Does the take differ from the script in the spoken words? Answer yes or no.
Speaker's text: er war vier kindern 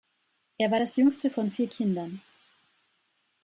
yes